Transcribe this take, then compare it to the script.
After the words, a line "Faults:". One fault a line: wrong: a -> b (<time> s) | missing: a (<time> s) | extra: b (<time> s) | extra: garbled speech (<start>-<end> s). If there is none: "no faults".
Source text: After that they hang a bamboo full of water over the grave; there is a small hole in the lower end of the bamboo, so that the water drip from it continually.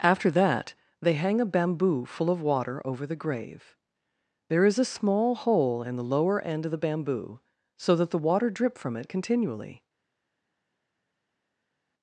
After that they hang a bamboo full of water over the grave; there is a small hole in the lower end of the bamboo, so that the water drip from it continually.
Faults:
no faults